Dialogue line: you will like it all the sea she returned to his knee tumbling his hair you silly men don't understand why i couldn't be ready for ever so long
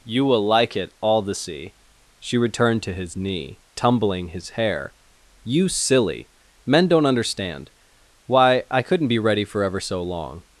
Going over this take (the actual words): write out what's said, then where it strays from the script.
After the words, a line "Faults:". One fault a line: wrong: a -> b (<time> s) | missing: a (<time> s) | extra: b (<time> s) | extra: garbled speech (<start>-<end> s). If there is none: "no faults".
you will like it all the sea she returned to his knee tumbling his hair you silly men don't understand why i couldn't be ready for ever so long
Faults:
no faults